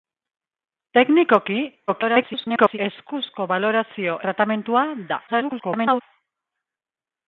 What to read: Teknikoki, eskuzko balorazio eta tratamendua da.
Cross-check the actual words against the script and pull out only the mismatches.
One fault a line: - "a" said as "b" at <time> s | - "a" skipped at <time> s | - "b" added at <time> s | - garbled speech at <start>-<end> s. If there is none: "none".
- garbled speech at 1.9-2.8 s
- "eta" skipped at 4.2 s
- garbled speech at 5.3-6.0 s